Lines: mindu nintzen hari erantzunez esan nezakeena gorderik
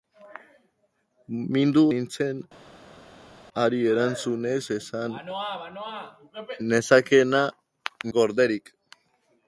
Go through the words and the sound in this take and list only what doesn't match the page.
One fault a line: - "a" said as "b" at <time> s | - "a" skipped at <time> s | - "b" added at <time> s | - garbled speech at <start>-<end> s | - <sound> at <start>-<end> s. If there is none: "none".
none